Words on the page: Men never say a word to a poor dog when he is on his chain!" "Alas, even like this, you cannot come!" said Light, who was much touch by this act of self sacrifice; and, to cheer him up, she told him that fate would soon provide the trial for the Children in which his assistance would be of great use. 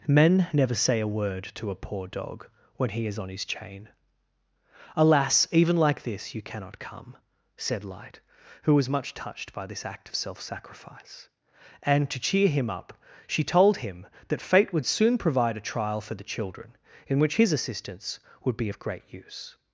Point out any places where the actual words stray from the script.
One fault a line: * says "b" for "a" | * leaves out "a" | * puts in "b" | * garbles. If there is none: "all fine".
* says "touched" for "touch"
* says "a" for "the"